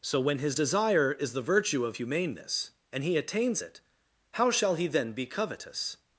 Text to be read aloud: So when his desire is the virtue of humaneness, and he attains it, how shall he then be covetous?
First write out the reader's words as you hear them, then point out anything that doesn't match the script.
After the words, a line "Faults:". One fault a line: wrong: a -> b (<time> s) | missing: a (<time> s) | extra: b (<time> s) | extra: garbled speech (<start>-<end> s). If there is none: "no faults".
So when his desire is the virtue of humaneness, and he attains it, how shall he then be covetous?
Faults:
no faults